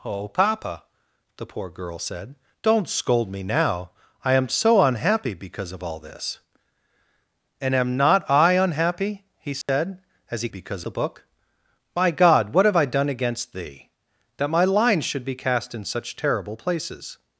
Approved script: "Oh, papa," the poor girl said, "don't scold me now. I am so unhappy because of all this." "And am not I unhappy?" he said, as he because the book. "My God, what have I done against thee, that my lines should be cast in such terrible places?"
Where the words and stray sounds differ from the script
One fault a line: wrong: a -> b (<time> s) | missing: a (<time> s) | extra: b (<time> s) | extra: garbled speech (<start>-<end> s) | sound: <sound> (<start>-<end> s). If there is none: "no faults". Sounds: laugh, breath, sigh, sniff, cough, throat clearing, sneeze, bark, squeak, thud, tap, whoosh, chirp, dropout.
sound: dropout (9.6-9.7 s)